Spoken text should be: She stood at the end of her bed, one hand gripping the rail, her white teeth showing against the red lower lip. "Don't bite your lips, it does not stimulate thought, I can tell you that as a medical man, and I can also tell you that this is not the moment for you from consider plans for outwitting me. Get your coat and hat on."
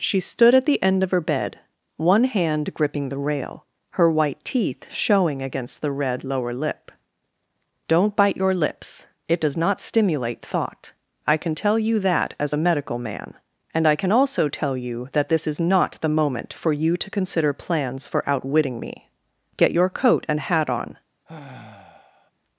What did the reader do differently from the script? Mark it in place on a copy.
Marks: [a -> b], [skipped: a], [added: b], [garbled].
She stood at the end of her bed, one hand gripping the rail, her white teeth showing against the red lower lip. "Don't bite your lips, it does not stimulate thought, I can tell you that as a medical man, and I can also tell you that this is not the moment for you [from -> to] consider plans for outwitting me. Get your coat and hat on."